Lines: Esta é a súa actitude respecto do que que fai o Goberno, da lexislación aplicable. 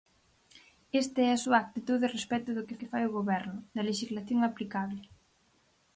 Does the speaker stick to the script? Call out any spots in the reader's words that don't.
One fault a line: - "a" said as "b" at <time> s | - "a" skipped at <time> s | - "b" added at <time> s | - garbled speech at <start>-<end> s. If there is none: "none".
none